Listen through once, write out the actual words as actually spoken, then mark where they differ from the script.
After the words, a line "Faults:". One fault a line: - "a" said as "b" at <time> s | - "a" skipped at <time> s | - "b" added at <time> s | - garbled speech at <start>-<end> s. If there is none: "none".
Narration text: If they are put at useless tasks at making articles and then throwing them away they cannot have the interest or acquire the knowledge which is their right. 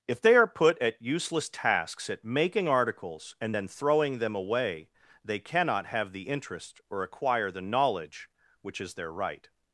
If they are put at useless tasks at making articles and then throwing them away they cannot have the interest or acquire the knowledge which is their right.
Faults:
none